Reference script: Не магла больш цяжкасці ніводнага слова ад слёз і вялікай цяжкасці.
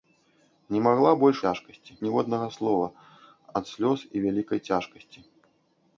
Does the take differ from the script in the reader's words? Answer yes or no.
no